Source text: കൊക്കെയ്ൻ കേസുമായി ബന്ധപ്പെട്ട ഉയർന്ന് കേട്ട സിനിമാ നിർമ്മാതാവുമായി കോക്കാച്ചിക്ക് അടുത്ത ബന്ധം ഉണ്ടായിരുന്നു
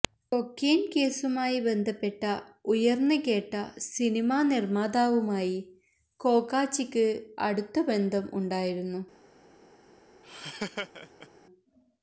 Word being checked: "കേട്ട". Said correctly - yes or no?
yes